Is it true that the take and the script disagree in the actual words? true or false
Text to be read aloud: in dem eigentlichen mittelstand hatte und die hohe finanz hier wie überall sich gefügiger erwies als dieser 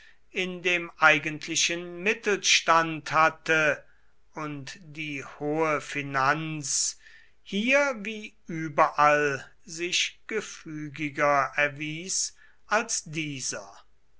false